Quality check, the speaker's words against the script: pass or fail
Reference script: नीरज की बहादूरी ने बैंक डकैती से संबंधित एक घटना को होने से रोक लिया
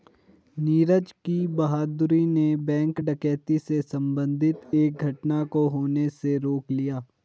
pass